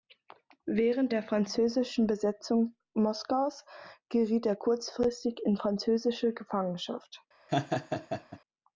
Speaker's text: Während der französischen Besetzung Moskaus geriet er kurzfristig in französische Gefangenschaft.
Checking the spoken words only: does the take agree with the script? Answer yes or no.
yes